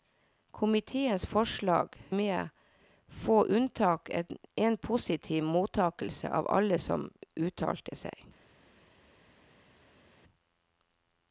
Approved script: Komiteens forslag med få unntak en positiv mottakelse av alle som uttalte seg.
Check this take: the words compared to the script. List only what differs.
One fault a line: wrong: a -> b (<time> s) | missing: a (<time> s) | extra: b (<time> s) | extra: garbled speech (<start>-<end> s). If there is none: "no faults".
no faults